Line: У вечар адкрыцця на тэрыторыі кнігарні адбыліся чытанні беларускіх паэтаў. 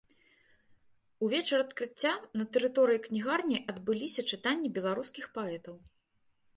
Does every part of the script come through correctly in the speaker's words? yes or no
yes